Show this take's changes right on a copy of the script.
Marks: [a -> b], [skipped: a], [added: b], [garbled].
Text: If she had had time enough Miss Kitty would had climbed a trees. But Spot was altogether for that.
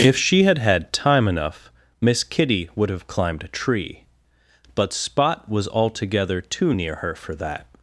If she had had time enough Miss Kitty would [had -> have] climbed a [trees. -> tree] But Spot was altogether [added: too near her] for that.